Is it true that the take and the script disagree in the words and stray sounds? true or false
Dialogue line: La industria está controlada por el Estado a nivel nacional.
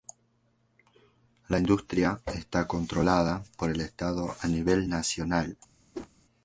true